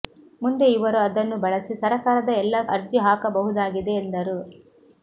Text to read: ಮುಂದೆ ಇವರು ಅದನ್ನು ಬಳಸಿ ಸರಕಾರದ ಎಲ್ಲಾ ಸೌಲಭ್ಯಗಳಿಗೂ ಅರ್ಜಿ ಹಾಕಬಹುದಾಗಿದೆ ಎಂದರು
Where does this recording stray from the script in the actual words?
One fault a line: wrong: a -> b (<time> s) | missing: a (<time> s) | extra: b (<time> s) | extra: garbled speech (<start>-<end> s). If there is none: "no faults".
missing: ಸೌಲಭ್ಯಗಳಿಗೂ (2.6 s)